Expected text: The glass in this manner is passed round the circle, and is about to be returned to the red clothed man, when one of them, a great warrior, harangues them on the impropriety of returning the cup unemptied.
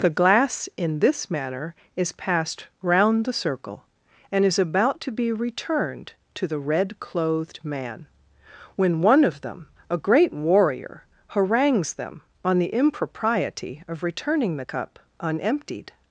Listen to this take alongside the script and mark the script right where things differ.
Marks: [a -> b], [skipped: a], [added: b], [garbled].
The glass in this manner is passed round the circle, and is about to be returned to the red clothed man, when one of them, a great warrior, harangues them on the impropriety of returning the cup unemptied.